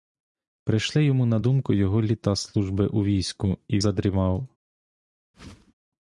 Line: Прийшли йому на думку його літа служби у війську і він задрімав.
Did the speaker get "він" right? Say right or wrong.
wrong